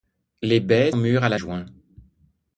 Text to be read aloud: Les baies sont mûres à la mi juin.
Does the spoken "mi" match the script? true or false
false